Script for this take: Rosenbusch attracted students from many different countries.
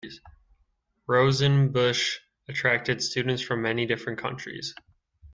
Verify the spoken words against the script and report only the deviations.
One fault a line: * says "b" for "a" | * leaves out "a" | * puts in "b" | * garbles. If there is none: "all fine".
all fine